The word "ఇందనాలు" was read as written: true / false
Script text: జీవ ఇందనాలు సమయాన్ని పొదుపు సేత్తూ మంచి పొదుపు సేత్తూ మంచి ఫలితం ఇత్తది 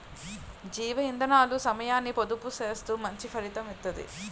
true